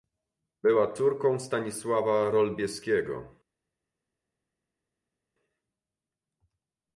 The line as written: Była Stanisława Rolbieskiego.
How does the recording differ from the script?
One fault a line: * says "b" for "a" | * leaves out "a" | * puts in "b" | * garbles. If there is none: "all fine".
* puts in "córką"